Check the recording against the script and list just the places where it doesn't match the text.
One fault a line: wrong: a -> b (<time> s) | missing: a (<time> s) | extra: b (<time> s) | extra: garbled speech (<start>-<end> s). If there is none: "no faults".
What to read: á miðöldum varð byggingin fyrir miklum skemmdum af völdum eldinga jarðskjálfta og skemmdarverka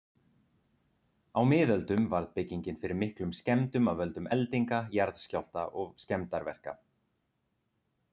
no faults